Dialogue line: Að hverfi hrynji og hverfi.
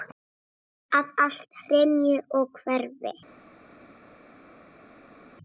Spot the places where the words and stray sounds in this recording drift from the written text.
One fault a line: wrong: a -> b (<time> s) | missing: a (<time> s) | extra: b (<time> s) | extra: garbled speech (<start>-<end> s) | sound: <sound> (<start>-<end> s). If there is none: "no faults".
wrong: hverfi -> allt (1.3 s)